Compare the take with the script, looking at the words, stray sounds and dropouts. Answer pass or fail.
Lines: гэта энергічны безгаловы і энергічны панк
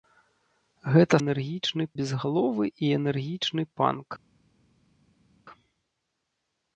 pass